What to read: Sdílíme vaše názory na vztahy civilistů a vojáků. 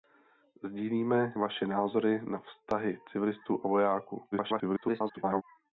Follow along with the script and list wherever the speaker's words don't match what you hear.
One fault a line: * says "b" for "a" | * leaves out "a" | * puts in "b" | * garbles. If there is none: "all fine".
* garbles